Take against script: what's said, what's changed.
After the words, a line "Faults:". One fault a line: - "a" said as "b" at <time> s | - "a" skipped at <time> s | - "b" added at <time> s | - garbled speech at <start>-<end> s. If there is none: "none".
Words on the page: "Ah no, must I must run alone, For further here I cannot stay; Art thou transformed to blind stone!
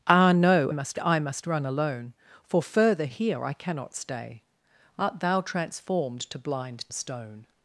"Ah no, must I must run alone, For further here I cannot stay; Art thou transformed to blind stone!
Faults:
none